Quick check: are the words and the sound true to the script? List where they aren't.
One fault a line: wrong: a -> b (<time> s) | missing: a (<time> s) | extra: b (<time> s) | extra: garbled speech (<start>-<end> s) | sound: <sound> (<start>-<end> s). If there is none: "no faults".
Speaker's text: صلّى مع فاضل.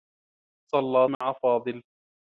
sound: dropout (1.1-1.2 s)